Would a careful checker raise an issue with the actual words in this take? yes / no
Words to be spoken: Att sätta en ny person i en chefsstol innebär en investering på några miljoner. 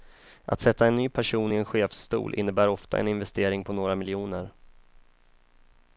yes